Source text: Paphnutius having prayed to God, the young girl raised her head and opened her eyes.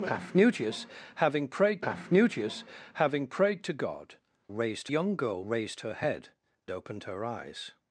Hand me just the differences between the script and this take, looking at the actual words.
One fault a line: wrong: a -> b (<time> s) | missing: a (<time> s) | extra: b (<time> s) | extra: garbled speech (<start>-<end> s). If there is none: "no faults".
extra: paphnutius having prayed (1.8 s)
wrong: the -> raised (4.5 s)
missing: and (6.3 s)